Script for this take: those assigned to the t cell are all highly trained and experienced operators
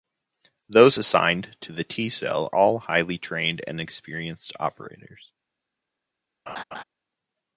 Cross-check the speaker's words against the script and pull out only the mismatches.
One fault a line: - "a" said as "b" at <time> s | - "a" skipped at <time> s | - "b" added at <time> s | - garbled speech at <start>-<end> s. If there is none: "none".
- "are" skipped at 2.5 s